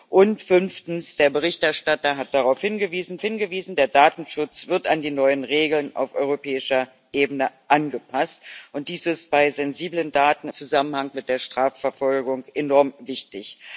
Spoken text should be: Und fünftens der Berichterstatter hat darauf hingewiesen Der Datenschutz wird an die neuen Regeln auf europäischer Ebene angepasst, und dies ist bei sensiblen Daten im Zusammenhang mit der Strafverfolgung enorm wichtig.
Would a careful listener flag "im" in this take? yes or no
yes